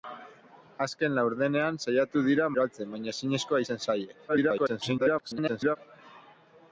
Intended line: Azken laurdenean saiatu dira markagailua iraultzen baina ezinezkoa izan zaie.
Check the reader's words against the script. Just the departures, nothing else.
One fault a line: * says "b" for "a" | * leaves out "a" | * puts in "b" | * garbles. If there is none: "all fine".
* leaves out "markagailua"
* garbles